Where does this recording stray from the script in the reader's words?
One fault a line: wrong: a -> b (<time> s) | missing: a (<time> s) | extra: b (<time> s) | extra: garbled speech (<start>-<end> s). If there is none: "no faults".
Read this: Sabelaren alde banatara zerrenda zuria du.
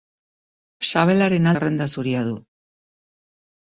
missing: alde banatara (1.5 s)